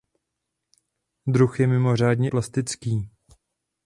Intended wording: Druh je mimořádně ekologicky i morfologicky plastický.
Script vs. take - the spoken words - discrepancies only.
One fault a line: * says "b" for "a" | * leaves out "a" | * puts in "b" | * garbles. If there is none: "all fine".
* leaves out "ekologicky i morfologicky"